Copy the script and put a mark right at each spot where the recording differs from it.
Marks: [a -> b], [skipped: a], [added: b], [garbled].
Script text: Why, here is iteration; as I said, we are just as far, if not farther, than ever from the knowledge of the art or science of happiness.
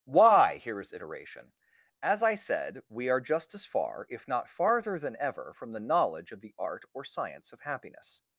Why, here is iteration; as I said, we are just as far, if not farther, than ever from the knowledge of the art or science of happiness.